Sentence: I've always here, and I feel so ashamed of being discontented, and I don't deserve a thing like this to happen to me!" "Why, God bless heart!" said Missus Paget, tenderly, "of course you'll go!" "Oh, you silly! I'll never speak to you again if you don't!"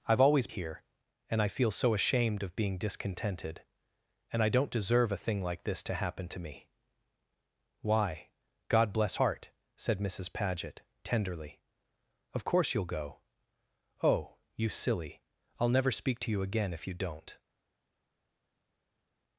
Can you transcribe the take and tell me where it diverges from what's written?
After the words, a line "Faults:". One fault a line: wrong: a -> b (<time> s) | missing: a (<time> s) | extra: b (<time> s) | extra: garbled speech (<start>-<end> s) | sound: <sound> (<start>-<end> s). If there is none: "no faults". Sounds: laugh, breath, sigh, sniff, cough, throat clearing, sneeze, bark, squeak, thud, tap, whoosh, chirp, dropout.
I've always here, and I feel so ashamed of being discontented, and I don't deserve a thing like this to happen to me!" "Why, God bless heart!" said Missus Paget, tenderly, "of course you'll go!" "Oh, you silly! I'll never speak to you again if you don't!"
Faults:
no faults